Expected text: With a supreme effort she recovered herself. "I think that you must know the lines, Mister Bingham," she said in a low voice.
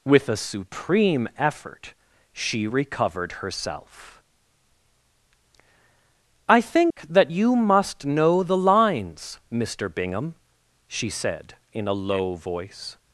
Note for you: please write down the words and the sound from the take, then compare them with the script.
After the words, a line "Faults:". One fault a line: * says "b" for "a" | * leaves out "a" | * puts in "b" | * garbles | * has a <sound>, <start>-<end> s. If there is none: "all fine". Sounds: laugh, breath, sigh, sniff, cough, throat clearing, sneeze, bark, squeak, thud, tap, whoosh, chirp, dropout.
With a supreme effort she recovered herself. "I think that you must know the lines, Mister Bingham," she said in a low voice.
Faults:
* has a dropout, 6.9-7.0 s